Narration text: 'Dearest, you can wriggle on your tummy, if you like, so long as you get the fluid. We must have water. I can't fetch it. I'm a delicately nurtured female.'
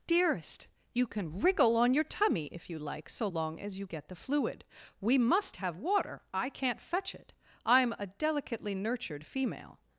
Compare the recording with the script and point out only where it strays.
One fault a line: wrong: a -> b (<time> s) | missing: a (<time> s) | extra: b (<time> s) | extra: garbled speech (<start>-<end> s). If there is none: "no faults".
no faults